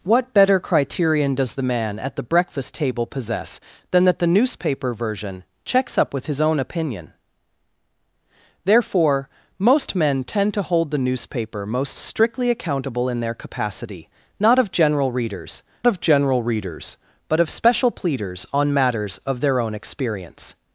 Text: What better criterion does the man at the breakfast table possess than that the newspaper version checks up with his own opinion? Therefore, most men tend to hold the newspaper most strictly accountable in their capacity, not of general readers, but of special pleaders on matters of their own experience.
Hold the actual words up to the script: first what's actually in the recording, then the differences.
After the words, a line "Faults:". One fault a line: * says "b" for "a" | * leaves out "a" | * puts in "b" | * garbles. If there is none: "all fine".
What better criterion does the man at the breakfast table possess than that the newspaper version checks up with his own opinion? Therefore, most men tend to hold the newspaper most strictly accountable in their capacity, not of general readers of general readers, but of special pleaders on matters of their own experience.
Faults:
* puts in "of general readers"